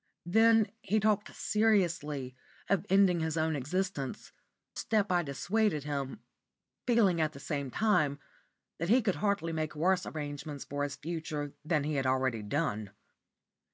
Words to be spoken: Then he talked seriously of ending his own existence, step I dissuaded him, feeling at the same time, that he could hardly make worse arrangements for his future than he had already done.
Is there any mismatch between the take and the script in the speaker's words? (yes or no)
no